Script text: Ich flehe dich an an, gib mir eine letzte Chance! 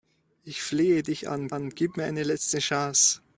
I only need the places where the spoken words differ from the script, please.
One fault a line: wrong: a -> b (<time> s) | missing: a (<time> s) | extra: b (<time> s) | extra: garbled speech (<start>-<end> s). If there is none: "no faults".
no faults